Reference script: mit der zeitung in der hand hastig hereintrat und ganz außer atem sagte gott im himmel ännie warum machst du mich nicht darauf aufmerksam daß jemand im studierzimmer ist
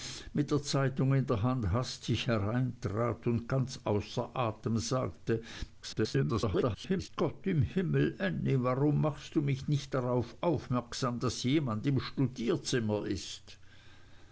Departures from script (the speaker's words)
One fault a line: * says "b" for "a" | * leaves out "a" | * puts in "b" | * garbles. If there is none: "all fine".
* garbles